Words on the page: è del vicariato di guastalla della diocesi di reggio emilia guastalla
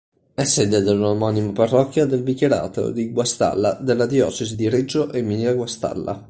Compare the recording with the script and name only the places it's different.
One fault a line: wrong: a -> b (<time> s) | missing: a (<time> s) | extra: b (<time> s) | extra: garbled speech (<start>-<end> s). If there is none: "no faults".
extra: sede dell'omonima parrocchia (0.5 s)